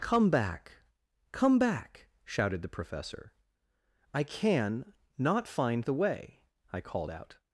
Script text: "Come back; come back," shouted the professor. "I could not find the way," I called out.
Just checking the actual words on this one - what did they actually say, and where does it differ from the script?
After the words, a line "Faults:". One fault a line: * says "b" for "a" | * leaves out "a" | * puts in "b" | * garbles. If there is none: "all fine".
"Come back; come back," shouted the professor. "I can not find the way," I called out.
Faults:
* says "can" for "could"